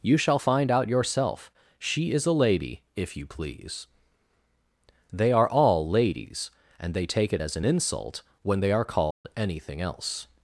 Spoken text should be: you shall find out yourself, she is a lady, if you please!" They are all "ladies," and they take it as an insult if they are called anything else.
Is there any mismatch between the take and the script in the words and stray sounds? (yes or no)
yes